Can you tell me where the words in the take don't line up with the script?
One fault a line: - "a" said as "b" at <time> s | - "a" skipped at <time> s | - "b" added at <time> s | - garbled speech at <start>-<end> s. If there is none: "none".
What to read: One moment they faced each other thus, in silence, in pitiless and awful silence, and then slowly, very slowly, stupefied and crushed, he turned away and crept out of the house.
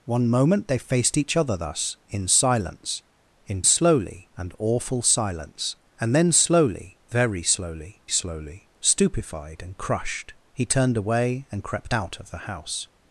- "pitiless" said as "slowly" at 3.6 s
- "slowly" added at 8.1 s